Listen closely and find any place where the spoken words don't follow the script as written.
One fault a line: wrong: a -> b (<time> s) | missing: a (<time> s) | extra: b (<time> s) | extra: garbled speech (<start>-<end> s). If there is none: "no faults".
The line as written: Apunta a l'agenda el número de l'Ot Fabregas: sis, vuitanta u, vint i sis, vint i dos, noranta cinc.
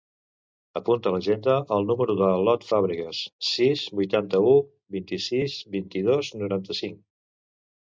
no faults